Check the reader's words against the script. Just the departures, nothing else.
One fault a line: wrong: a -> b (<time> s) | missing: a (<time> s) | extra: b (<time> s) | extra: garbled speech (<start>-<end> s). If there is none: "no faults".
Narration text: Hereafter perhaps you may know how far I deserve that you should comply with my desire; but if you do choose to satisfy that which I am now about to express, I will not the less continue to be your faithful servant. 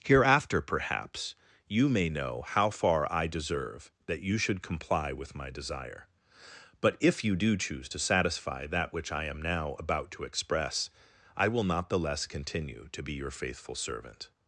no faults